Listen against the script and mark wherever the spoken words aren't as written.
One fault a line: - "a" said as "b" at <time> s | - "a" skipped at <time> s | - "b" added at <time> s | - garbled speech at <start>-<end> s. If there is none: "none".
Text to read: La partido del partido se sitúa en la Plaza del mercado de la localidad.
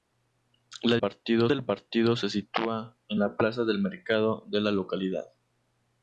none